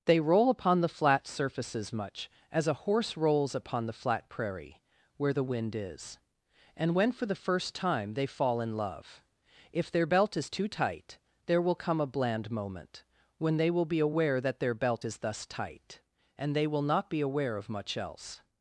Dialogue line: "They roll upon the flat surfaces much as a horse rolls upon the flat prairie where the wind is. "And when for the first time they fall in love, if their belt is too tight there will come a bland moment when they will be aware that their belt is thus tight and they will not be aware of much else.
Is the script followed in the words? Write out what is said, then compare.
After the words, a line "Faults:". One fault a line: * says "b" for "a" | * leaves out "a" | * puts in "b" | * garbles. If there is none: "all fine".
"They roll upon the flat surfaces much as a horse rolls upon the flat prairie where the wind is. "And when for the first time they fall in love, if their belt is too tight there will come a bland moment when they will be aware that their belt is thus tight and they will not be aware of much else.
Faults:
all fine